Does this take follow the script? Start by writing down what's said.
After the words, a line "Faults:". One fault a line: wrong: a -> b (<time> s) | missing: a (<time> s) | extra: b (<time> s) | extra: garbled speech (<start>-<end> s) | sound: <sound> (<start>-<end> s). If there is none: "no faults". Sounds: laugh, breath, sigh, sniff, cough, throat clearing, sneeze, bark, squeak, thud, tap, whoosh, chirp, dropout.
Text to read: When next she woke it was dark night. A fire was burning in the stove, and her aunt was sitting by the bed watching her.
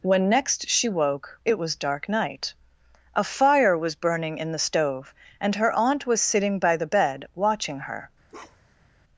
When next she woke it was dark night. A fire was burning in the stove, and her aunt was sitting by the bed watching her.
Faults:
sound: bark (8.3-8.9 s)